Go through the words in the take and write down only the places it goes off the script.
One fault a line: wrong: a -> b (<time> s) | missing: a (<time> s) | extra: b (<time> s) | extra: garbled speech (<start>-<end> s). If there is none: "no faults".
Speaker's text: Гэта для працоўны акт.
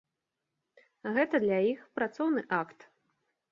extra: іх (1.7 s)